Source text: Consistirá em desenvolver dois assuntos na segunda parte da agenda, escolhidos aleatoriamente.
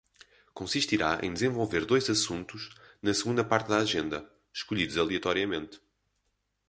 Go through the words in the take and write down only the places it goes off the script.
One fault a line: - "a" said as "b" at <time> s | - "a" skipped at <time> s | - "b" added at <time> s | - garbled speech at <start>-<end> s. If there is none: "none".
none